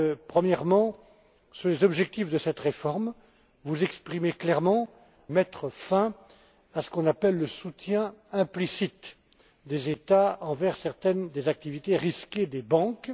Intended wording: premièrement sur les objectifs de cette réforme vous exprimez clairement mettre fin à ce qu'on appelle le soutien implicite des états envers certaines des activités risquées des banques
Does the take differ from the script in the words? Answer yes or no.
no